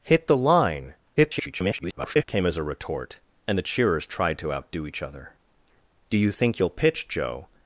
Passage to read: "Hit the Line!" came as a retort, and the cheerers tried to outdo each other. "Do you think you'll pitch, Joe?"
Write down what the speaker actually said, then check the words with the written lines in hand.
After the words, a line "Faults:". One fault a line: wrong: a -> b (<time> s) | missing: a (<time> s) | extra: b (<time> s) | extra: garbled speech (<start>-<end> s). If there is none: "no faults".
"Hit the Line!" [garbled] came as a retort, and the cheerers tried to outdo each other. "Do you think you'll pitch, Joe?"
Faults:
extra: garbled speech (1.2-2.2 s)